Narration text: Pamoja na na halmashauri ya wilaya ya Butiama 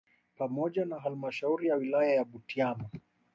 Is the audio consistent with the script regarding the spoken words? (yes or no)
no